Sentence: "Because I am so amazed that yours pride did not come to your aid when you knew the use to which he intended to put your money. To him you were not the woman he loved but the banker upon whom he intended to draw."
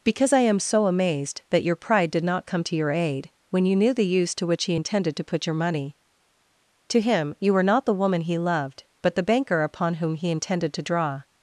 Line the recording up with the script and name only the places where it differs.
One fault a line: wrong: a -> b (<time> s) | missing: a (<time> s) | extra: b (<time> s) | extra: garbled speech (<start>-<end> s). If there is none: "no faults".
wrong: yours -> your (1.6 s)